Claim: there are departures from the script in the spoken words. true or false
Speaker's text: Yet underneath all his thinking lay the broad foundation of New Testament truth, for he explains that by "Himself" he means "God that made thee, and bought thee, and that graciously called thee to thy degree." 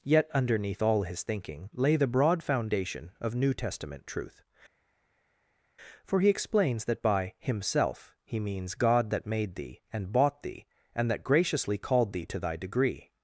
false